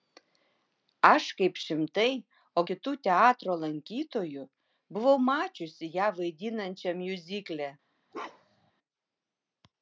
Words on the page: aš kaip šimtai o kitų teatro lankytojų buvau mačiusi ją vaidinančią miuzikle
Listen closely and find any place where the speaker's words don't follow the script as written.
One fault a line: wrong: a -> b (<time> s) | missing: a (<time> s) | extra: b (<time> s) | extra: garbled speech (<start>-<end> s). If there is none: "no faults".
no faults